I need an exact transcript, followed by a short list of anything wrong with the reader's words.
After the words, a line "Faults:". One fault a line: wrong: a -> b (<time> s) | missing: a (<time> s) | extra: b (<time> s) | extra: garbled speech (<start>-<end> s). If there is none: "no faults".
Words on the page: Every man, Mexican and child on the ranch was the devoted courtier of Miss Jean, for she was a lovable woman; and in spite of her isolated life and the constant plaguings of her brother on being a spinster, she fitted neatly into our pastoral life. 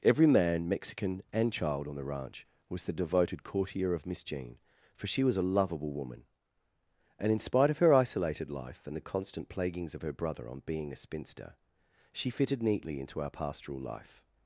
Every man, Mexican and child on the ranch was the devoted courtier of Miss Jean, for she was a lovable woman; and in spite of her isolated life and the constant plaguings of her brother on being a spinster, she fitted neatly into our pastoral life.
Faults:
no faults